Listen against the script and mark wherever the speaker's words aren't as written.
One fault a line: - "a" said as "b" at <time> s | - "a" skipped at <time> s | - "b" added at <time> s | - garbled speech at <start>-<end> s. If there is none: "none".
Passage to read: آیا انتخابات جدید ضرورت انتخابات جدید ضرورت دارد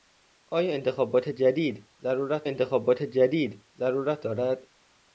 none